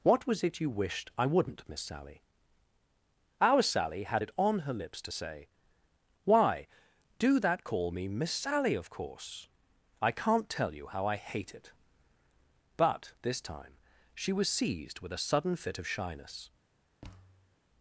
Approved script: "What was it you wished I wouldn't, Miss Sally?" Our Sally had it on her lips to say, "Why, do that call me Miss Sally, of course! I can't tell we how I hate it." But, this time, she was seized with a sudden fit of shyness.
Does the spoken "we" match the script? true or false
false